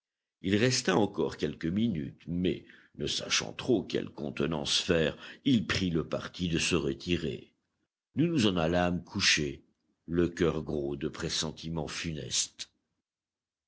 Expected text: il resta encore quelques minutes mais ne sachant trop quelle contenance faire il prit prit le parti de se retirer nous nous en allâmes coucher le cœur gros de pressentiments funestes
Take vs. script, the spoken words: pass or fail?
fail